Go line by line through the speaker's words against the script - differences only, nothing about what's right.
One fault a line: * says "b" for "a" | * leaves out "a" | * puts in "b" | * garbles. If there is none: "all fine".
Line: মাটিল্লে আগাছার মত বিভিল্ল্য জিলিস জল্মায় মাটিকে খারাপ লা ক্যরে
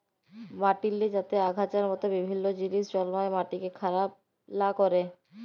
* puts in "যাতে"